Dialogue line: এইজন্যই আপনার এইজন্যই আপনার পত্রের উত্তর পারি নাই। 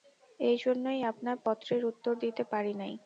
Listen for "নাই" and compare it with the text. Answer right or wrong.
right